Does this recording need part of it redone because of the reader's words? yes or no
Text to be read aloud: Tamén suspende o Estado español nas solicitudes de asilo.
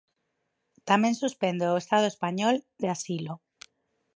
yes